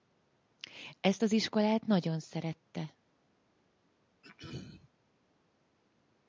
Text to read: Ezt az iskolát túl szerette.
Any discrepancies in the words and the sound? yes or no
yes